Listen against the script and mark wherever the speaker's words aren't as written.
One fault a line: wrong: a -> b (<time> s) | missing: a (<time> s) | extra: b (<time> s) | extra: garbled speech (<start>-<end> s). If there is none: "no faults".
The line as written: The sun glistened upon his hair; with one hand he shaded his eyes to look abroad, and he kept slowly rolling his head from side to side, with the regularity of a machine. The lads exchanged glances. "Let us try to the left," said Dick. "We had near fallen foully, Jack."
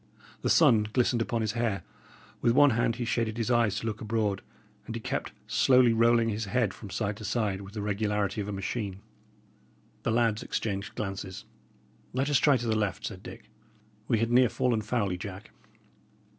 no faults